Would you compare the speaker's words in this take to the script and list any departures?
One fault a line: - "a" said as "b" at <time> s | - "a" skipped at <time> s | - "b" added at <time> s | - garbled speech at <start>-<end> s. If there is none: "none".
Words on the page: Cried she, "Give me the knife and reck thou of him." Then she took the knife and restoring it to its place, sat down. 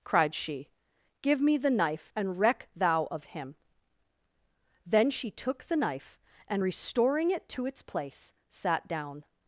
none